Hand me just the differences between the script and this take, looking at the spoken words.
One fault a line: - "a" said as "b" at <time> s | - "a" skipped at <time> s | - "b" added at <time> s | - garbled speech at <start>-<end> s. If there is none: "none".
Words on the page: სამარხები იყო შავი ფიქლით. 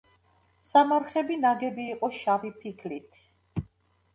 - "ნაგები" added at 1.4 s